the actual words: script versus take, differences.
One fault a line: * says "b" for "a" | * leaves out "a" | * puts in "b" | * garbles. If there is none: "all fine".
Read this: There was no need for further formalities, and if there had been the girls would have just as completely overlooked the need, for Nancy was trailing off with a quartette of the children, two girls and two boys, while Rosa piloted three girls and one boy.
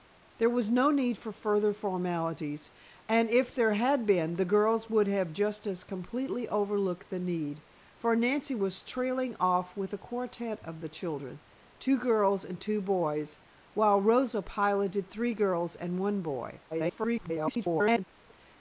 * garbles